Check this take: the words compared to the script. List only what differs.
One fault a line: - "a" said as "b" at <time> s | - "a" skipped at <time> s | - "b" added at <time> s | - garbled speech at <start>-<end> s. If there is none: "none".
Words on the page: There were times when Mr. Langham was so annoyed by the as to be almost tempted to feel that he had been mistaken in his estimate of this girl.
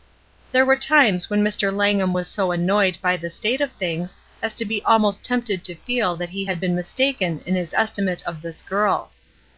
- "state of things" added at 3.3 s